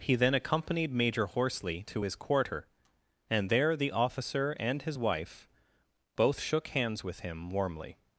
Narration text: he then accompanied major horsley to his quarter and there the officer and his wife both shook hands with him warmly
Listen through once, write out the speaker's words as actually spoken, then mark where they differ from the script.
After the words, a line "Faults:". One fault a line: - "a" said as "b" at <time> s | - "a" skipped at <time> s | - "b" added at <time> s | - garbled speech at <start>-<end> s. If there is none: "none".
he then accompanied major horsley to his quarter and there the officer and his wife both shook hands with him warmly
Faults:
none